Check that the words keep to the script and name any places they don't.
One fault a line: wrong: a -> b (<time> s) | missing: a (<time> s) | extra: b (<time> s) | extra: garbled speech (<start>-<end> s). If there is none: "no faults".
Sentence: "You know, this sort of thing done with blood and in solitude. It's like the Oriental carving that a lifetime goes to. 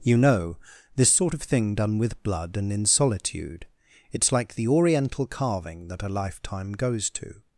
no faults